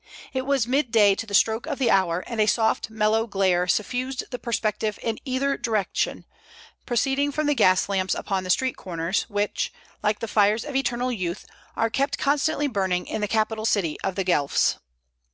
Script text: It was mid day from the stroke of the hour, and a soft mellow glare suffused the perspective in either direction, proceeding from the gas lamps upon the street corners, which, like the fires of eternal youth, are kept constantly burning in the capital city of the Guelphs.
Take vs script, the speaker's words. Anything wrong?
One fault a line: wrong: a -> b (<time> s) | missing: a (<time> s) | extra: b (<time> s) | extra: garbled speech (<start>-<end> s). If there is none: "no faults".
wrong: from -> to (1.1 s)